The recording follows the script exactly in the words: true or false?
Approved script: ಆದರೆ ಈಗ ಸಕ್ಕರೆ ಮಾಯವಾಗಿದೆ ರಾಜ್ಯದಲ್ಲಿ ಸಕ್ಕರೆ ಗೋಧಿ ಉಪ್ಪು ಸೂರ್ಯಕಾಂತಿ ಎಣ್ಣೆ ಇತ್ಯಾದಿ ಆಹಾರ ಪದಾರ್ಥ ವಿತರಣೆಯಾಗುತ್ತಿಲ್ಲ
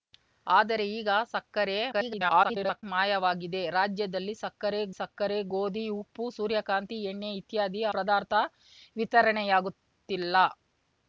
false